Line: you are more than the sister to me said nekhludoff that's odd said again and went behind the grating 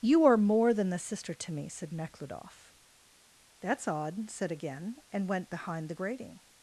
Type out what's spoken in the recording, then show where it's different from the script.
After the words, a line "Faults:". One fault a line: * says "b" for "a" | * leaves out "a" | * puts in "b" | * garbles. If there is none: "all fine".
you are more than the sister to me said nekhludoff that's odd said again and went behind the grating
Faults:
all fine